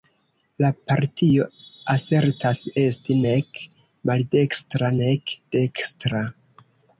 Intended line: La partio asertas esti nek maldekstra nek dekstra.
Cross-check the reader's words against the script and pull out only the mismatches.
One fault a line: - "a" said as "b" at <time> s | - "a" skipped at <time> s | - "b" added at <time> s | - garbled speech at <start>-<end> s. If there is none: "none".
none